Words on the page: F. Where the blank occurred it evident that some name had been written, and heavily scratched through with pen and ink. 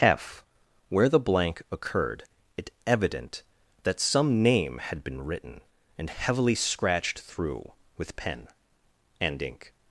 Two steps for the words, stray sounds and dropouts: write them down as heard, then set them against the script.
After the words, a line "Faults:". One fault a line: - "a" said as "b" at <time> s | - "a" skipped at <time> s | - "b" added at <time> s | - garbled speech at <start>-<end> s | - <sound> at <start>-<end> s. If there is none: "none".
F. Where the blank occurred it evident that some name had been written, and heavily scratched through with pen and ink.
Faults:
none